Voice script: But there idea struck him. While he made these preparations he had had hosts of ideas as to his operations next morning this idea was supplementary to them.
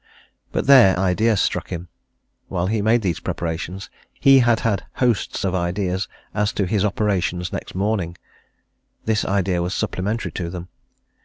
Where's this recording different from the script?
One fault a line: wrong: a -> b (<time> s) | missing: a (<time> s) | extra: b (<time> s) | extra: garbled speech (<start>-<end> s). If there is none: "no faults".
no faults